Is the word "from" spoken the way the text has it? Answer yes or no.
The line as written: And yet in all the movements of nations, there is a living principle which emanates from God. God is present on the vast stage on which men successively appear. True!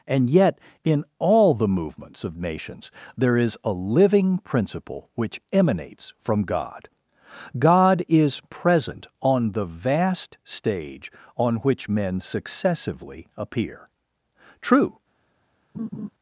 yes